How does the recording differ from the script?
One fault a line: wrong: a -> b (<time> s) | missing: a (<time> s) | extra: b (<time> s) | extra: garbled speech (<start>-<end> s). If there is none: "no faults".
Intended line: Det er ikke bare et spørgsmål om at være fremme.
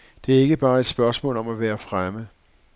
no faults